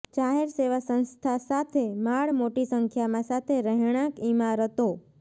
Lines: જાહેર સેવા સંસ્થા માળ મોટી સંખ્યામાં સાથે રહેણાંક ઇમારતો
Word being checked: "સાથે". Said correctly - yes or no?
yes